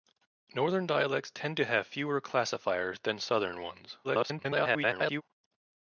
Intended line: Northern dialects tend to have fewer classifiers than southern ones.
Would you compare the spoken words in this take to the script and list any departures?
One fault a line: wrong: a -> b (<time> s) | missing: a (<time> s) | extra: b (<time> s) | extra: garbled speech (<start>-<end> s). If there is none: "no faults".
extra: garbled speech (4.0-5.2 s)